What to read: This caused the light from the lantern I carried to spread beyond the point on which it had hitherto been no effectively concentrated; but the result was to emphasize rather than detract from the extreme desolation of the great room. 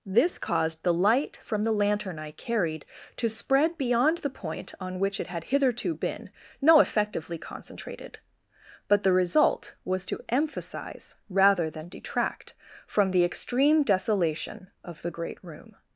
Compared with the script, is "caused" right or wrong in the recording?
right